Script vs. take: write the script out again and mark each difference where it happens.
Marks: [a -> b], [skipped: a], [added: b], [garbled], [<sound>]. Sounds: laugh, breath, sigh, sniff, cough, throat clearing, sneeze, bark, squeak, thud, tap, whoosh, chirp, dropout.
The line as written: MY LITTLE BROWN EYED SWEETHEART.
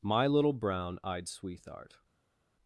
MY LITTLE BROWN EYED SWEETHEART.